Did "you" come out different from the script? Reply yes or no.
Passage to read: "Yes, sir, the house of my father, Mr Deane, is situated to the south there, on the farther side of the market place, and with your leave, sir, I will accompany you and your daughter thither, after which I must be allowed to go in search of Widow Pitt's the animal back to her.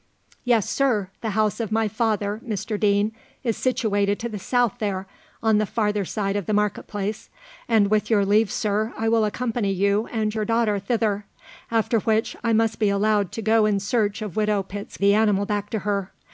no